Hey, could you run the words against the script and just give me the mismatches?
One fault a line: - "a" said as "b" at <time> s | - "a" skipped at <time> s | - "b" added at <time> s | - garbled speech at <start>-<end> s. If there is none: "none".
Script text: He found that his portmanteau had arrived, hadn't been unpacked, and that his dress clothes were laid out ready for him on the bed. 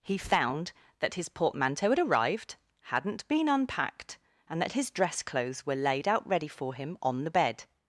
none